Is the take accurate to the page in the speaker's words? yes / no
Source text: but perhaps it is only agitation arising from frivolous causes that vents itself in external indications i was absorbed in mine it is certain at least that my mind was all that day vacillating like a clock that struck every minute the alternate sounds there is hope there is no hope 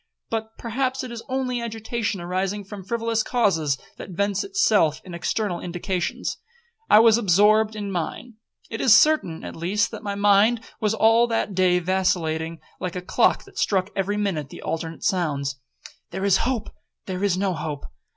yes